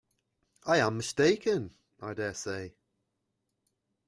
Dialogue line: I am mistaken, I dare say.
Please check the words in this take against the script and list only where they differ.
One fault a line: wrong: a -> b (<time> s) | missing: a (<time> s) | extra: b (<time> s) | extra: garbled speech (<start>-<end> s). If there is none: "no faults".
no faults